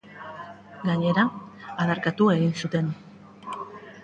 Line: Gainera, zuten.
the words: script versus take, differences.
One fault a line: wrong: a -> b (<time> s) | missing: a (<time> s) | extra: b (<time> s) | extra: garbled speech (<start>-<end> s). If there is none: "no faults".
extra: adarkatu egin (1.9 s)